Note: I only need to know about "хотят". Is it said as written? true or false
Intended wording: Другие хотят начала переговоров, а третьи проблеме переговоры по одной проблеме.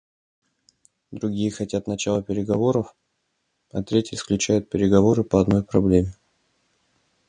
true